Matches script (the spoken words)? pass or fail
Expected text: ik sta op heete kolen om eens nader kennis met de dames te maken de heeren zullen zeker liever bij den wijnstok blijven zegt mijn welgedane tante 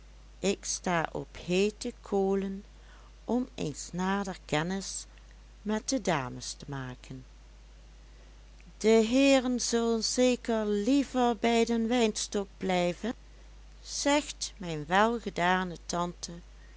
pass